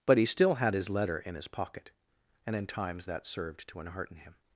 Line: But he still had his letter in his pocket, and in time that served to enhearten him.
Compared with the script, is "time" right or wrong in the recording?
wrong